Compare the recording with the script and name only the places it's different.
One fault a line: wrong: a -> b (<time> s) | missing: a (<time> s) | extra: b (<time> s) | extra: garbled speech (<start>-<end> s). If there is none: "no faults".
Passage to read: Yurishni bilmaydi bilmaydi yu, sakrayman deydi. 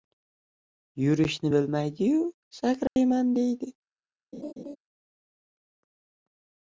missing: bilmaydi (2.1 s)